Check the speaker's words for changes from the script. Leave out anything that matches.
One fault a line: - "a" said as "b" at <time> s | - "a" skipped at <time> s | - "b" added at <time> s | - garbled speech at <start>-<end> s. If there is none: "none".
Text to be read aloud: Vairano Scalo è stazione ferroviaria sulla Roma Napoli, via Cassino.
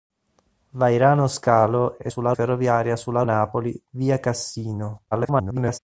- "stazione" said as "sulla" at 2.1 s
- "Roma" skipped at 3.2 s
- garbled speech at 5.1-5.8 s